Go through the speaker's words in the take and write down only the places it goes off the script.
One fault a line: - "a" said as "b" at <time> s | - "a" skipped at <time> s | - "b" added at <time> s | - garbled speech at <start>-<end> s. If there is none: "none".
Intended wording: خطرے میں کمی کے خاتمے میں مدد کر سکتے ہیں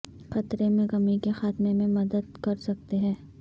none